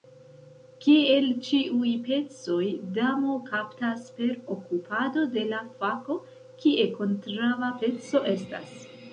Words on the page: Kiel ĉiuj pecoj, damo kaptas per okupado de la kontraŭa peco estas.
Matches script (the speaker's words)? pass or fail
fail